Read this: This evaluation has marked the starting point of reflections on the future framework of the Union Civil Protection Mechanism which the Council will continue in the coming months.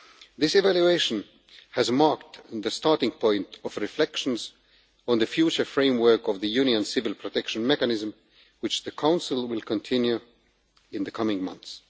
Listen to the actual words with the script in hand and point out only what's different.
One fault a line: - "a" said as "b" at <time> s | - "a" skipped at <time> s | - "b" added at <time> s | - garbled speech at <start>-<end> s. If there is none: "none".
none